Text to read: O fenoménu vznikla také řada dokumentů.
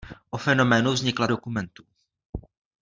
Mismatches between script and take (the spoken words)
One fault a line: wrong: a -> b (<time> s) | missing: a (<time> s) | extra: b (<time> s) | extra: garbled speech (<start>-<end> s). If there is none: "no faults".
missing: také řada (1.3 s)